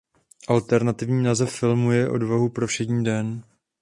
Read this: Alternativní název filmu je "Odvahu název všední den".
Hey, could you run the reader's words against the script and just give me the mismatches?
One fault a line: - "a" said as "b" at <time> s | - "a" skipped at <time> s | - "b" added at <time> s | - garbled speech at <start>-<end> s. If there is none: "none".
- "název" said as "pro" at 2.5 s